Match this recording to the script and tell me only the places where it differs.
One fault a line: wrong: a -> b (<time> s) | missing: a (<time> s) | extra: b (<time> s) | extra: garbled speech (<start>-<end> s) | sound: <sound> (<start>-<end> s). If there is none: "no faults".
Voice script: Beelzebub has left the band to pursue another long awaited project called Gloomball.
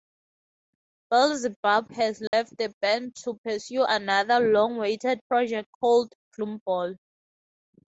sound: dropout (2.3-2.3 s)